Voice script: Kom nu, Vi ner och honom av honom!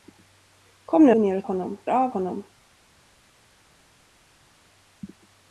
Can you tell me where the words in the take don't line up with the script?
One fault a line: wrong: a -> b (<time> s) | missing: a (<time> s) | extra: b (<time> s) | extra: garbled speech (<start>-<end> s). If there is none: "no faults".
no faults